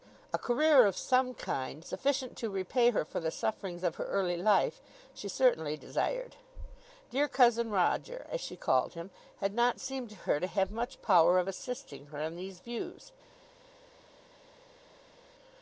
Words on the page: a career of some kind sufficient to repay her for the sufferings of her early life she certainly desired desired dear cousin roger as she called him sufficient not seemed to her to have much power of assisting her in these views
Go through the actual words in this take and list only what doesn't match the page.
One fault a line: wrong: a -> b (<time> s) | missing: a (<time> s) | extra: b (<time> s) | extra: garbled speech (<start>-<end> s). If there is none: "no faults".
missing: desired (6.4 s)
wrong: sufficient -> had (9.4 s)